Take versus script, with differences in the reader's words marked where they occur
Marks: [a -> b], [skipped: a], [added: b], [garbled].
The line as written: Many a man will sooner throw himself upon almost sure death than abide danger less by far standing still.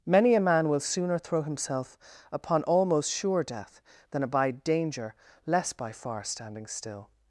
Many a man will sooner throw himself upon almost sure death than abide danger less by far standing still.